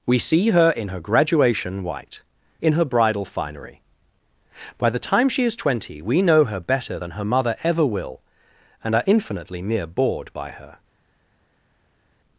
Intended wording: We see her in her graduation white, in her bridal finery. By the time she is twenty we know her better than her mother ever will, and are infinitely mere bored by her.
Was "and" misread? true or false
false